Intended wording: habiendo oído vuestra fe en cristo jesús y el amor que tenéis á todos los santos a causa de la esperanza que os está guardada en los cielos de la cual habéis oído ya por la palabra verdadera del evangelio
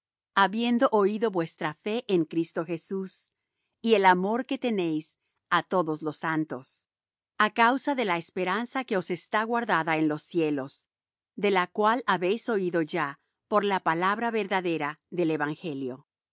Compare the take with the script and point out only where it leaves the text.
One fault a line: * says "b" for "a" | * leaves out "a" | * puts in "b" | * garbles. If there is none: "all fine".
all fine